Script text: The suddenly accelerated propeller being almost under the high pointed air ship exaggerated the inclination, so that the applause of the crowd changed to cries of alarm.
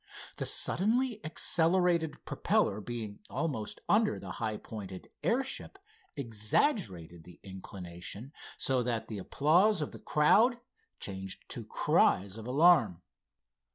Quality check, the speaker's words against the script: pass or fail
pass